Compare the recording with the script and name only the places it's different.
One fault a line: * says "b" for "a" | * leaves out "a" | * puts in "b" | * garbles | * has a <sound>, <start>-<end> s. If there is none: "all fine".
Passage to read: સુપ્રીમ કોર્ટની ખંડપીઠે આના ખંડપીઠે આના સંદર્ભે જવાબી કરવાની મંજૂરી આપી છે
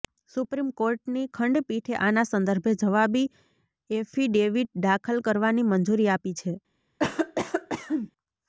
* says "સંદર્ભે જવાબી એફિડેવિટ દાખલ" for "ખંડપીઠે આના સંદર્ભે જવાબી"
* has a cough, 7.0-8.1 s